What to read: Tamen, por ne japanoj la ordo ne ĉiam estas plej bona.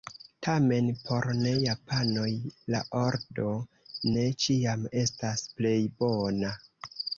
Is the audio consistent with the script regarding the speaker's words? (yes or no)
yes